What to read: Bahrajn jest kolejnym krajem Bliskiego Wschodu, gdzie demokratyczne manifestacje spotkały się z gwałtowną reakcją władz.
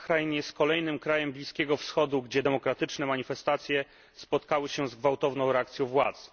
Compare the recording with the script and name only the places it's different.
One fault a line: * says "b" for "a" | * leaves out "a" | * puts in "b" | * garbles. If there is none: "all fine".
all fine